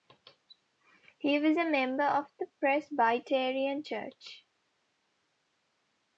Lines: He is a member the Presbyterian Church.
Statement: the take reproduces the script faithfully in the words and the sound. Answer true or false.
false